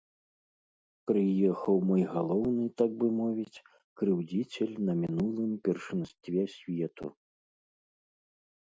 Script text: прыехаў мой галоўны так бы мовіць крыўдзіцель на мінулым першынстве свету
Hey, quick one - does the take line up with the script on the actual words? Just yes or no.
yes